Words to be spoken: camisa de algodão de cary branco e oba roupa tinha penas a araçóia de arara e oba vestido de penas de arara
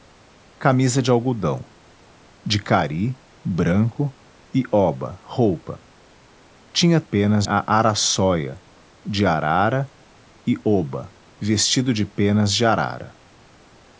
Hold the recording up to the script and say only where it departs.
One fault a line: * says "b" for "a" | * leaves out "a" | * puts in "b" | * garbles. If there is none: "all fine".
all fine